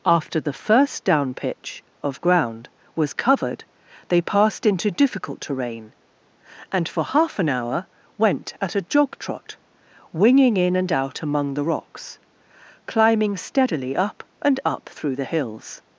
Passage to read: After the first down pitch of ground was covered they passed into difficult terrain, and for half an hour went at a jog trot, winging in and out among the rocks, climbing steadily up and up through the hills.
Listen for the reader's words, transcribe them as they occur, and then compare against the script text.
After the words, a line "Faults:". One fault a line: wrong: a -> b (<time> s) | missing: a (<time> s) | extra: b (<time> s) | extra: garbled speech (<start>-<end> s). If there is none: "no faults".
After the first down pitch of ground was covered they passed into difficult terrain, and for half an hour went at a jog trot, winging in and out among the rocks, climbing steadily up and up through the hills.
Faults:
no faults